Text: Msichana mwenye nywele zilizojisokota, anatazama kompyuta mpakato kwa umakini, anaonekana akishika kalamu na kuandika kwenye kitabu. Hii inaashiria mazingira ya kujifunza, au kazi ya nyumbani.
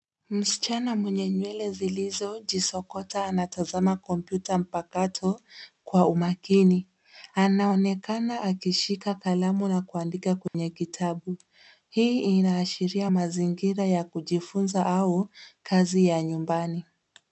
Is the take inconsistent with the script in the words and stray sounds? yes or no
yes